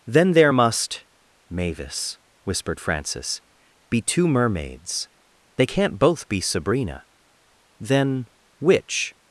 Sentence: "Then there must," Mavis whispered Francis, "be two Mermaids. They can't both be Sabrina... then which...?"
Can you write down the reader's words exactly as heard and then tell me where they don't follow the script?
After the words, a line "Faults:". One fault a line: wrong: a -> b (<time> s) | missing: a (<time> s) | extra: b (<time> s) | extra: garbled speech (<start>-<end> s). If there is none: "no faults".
"Then there must," Mavis whispered Francis, "be two Mermaids. They can't both be Sabrina... then which...?"
Faults:
no faults